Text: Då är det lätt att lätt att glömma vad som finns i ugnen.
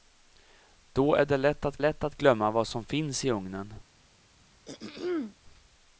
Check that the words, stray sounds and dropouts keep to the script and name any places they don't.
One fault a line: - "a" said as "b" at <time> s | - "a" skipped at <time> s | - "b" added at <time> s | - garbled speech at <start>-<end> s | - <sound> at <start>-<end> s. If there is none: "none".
- throat clearing at 4.6-5.4 s